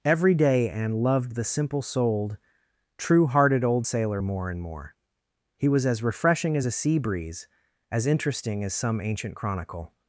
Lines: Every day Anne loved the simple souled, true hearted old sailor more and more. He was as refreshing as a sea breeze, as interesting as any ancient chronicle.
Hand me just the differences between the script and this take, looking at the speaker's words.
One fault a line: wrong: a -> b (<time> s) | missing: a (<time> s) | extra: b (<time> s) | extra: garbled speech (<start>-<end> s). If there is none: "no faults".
wrong: any -> some (8.7 s)